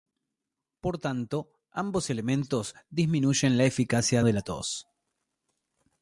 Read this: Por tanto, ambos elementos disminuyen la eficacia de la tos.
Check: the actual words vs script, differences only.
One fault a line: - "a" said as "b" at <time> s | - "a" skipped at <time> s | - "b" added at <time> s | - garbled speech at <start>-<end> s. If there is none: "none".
none